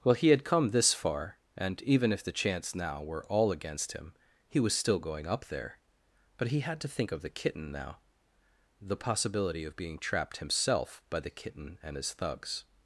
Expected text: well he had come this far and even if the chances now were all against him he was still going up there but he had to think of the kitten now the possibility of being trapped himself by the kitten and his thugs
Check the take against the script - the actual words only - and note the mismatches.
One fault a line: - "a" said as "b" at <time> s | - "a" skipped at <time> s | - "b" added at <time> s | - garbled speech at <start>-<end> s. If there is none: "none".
- "chances" said as "chance" at 2.3 s